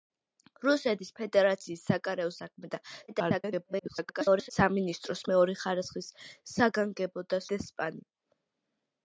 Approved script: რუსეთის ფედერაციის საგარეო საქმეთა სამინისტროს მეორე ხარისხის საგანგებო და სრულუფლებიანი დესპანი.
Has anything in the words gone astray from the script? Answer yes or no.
yes